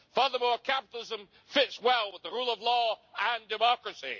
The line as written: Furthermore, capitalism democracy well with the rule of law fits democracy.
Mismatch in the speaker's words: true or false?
true